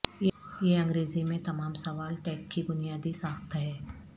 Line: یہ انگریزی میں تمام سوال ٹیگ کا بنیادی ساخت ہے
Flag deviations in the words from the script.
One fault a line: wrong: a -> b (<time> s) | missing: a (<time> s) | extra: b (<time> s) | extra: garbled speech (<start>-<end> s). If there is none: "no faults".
wrong: کا -> کی (2.5 s)